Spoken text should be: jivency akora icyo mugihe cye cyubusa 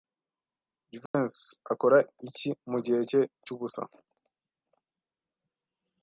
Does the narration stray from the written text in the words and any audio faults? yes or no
yes